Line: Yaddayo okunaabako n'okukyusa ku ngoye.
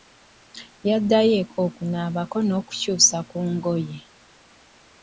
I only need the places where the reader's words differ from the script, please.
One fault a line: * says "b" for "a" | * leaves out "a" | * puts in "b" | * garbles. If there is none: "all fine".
* puts in "eka"